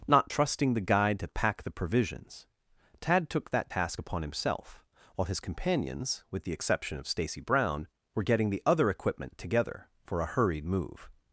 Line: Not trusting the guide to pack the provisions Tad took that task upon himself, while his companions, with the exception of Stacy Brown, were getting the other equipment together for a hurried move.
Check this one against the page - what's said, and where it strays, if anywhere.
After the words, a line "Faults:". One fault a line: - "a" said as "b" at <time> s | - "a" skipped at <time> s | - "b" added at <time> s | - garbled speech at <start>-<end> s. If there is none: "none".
Not trusting the guide to pack the provisions Tad took that task upon himself, while his companions, with the exception of Stacy Brown, were getting the other equipment together for a hurried move.
Faults:
none